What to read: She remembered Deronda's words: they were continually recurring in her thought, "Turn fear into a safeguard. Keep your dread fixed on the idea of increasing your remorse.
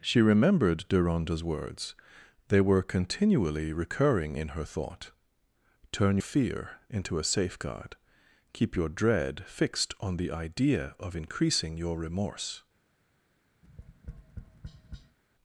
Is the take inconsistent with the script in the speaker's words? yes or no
no